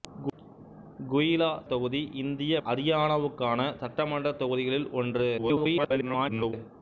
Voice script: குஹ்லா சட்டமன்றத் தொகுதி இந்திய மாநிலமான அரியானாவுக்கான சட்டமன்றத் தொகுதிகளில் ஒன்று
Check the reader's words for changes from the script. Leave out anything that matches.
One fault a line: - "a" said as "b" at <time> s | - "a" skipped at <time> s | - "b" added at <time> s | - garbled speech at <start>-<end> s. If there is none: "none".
- "சட்டமன்றத்" skipped at 1.5 s
- "மாநிலமான" skipped at 2.6 s
- garbled speech at 5.4-6.5 s